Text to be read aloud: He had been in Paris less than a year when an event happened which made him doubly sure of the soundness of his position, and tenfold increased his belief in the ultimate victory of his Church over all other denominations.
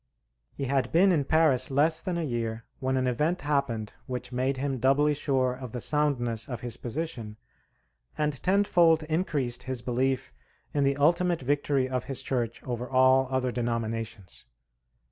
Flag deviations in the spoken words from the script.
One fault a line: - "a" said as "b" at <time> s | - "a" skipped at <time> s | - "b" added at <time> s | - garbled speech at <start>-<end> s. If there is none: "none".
none